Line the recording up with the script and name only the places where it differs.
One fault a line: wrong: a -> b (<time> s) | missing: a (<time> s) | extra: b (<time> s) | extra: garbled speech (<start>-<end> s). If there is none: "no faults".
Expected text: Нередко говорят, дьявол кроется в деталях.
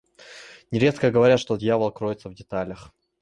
extra: что (1.4 s)